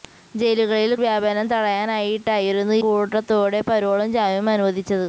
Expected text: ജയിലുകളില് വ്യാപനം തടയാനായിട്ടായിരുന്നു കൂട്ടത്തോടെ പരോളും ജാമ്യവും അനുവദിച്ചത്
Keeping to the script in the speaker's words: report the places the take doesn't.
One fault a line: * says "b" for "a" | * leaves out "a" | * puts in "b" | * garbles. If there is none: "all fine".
all fine